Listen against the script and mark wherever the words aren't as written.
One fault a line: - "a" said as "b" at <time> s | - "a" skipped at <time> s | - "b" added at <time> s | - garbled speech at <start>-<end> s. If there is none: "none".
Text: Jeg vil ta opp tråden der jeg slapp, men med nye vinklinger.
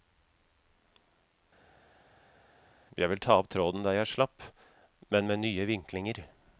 none